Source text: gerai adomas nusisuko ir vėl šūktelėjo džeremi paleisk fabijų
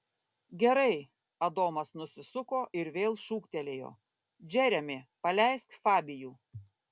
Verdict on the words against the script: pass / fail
pass